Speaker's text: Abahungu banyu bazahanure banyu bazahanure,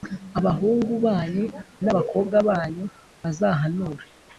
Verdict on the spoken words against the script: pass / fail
fail